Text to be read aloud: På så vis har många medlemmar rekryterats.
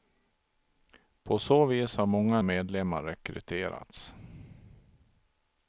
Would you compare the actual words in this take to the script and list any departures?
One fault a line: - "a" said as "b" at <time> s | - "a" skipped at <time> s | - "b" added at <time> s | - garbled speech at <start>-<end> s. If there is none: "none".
none